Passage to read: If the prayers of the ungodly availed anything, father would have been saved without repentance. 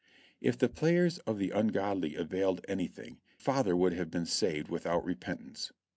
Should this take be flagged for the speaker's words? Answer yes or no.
no